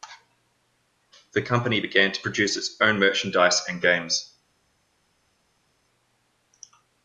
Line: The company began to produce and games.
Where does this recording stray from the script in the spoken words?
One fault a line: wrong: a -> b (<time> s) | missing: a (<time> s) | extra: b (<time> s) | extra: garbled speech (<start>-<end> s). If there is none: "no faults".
extra: its own merchandise (2.5 s)